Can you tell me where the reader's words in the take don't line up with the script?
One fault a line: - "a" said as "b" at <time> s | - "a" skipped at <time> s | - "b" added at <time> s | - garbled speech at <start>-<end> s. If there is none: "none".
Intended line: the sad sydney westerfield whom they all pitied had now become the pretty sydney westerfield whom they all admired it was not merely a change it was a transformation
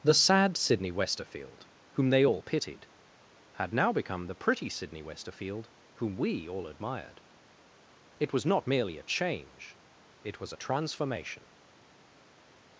- "they" said as "we" at 6.2 s